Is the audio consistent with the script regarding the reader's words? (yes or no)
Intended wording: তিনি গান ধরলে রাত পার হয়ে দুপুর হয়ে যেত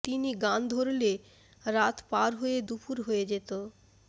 yes